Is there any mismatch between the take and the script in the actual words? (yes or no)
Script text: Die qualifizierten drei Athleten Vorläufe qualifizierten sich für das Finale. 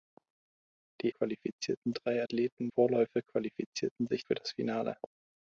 no